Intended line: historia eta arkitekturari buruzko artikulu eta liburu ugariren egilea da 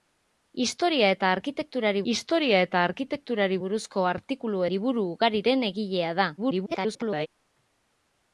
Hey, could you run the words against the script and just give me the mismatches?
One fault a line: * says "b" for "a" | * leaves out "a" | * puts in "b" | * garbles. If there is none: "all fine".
* puts in "historia eta arkitekturari"
* leaves out "eta"
* garbles